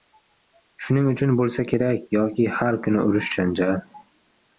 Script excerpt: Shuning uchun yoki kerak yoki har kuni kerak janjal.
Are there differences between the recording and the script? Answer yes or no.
yes